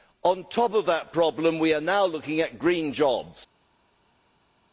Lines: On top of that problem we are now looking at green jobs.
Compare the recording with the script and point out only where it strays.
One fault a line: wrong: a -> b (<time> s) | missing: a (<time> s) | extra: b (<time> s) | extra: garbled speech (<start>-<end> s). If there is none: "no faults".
no faults